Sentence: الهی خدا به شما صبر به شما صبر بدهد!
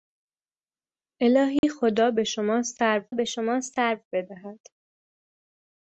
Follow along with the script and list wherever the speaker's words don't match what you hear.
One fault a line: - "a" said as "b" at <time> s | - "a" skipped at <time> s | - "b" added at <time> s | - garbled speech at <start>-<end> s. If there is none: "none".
none